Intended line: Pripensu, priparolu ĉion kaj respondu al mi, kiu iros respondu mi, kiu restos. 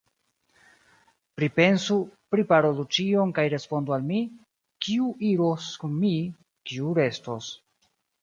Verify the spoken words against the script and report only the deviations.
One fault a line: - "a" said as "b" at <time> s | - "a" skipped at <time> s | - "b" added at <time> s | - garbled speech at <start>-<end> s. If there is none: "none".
- "respondu" said as "kun" at 5.8 s